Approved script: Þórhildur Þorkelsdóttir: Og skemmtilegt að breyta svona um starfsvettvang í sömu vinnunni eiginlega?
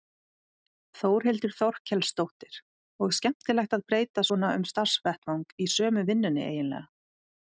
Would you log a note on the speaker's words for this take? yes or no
no